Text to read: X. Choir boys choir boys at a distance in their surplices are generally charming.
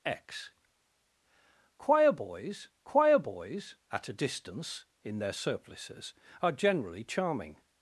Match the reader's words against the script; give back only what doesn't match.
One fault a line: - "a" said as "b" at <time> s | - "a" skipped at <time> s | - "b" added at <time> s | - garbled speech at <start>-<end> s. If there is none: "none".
none